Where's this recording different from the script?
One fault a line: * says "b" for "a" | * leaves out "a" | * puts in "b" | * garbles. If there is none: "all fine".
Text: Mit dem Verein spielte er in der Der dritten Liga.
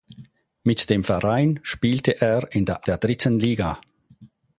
all fine